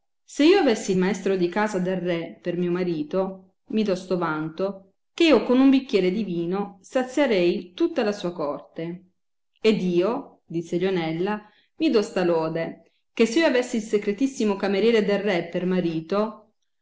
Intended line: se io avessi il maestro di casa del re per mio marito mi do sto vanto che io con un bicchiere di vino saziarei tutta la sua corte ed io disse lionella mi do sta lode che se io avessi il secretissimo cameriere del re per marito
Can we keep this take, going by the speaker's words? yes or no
yes